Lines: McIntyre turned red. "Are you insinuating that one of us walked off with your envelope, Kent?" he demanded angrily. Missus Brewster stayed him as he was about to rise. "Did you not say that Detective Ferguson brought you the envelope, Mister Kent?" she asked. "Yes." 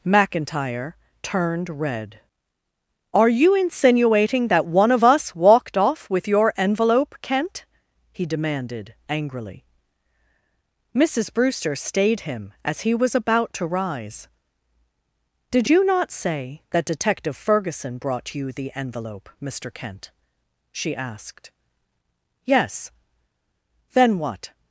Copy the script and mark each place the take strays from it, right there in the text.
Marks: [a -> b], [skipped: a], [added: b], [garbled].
McIntyre turned red. "Are you insinuating that one of us walked off with your envelope, Kent?" he demanded angrily. Missus Brewster stayed him as he was about to rise. "Did you not say that Detective Ferguson brought you the envelope, Mister Kent?" she asked. "Yes." [added: Then what]